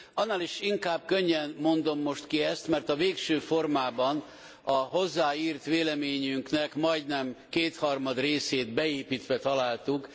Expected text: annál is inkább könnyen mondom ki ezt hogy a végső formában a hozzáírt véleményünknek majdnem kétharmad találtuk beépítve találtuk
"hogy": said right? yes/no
no